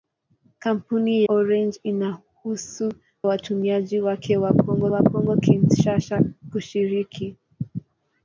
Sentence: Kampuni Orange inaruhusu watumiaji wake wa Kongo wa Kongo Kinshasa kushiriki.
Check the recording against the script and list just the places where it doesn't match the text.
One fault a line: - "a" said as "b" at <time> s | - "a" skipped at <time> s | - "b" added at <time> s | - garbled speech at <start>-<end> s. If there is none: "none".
none